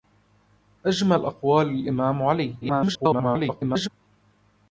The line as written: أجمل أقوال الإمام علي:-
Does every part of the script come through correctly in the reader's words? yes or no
no